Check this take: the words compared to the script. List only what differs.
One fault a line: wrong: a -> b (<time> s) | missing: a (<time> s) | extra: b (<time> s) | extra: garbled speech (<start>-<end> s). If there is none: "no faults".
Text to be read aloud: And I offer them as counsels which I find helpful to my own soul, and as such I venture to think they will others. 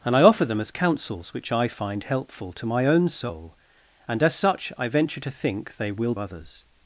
no faults